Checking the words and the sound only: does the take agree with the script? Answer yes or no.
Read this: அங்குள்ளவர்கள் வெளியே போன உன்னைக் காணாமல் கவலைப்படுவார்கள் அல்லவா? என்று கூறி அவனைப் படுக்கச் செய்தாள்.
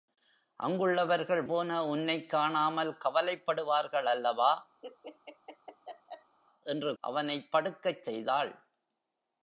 no